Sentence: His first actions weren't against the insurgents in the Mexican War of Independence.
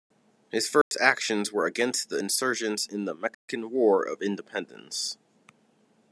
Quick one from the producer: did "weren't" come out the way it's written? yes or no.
no